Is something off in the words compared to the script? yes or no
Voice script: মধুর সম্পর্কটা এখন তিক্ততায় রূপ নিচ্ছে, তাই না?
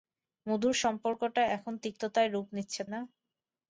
yes